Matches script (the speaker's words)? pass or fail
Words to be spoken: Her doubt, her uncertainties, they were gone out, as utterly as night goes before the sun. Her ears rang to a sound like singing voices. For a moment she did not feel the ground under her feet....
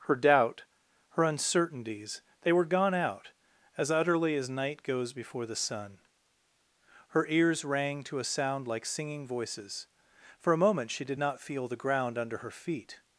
pass